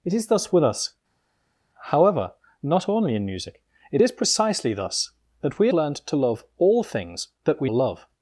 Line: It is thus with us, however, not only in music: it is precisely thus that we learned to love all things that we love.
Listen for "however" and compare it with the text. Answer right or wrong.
right